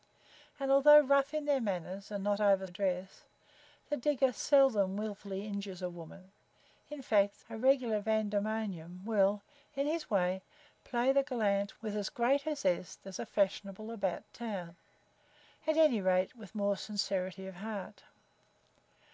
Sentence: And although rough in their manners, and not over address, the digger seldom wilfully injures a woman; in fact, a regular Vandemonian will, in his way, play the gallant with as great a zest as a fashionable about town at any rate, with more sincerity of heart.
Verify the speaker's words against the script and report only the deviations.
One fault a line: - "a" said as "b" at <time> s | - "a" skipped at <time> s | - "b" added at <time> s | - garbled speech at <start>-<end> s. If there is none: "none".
none